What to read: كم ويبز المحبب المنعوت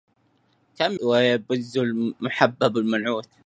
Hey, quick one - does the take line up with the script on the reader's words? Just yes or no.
yes